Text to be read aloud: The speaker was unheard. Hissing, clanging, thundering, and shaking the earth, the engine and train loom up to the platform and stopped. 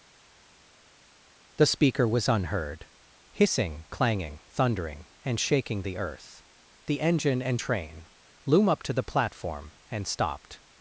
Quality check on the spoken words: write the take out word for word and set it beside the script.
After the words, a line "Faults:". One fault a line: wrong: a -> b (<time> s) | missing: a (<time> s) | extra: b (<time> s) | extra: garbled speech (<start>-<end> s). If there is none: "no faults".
The speaker was unheard. Hissing, clanging, thundering, and shaking the earth, the engine and train loom up to the platform and stopped.
Faults:
no faults